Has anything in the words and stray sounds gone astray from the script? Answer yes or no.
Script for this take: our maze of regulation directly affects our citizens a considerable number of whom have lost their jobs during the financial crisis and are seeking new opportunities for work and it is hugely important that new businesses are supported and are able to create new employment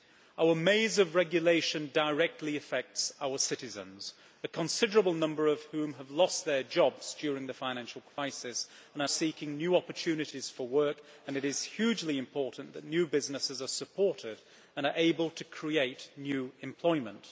yes